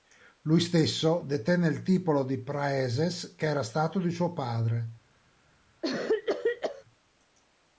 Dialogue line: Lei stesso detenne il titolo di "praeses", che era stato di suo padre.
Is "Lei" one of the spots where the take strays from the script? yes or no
yes